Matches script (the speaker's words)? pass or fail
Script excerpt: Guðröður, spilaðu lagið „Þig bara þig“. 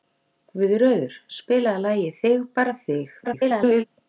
fail